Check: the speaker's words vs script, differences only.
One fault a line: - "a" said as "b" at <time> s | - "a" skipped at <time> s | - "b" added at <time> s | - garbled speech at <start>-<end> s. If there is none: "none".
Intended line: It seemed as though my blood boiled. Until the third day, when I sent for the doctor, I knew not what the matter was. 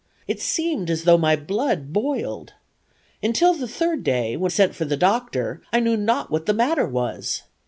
- "I" skipped at 4.5 s